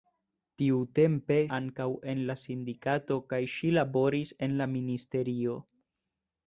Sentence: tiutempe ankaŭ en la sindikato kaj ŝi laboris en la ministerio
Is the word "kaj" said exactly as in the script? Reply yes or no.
yes